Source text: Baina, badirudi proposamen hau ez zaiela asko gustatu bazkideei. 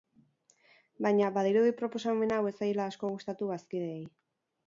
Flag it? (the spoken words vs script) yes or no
no